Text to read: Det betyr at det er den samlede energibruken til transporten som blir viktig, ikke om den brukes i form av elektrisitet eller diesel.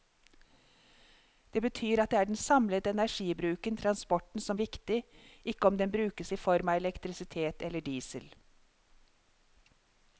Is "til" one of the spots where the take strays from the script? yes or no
yes